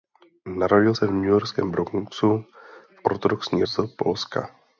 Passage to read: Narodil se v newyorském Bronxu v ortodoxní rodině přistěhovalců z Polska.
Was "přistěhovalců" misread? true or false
true